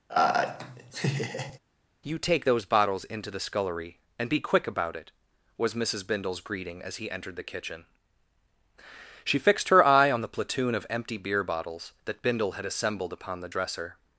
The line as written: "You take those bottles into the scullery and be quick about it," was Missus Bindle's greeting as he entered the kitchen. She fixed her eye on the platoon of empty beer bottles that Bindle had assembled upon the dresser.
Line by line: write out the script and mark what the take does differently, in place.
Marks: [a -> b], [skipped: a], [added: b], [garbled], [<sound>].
[laugh] "You take those bottles into the scullery and be quick about it," was Missus Bindle's greeting as he entered the kitchen. She fixed her eye on the platoon of empty beer bottles that Bindle had assembled upon the dresser.